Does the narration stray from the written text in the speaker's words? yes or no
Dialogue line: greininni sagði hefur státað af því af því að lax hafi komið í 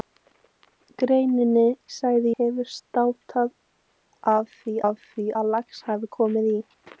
no